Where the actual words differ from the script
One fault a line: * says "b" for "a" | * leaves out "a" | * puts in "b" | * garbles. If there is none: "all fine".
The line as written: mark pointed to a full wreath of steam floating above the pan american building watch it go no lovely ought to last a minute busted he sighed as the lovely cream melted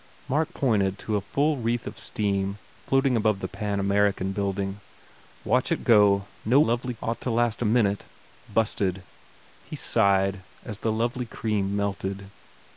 all fine